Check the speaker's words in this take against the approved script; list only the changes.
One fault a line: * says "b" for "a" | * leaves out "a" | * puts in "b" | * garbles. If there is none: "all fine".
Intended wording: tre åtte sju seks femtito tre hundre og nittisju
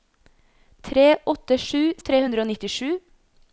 * leaves out "seks femtito"